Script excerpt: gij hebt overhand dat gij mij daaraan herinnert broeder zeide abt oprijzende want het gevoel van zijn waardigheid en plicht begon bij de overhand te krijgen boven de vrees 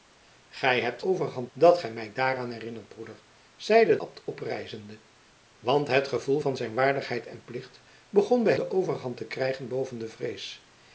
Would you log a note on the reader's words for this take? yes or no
no